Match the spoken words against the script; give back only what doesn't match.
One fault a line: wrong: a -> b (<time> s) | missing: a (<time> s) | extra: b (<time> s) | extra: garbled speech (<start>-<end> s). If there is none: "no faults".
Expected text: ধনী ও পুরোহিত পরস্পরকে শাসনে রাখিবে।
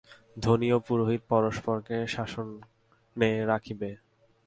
no faults